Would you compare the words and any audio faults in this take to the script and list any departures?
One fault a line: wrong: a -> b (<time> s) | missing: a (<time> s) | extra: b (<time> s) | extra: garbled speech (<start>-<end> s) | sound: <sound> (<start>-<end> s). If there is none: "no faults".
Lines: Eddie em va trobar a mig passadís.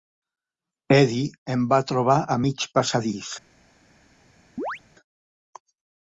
sound: chirp (4.6-4.8 s)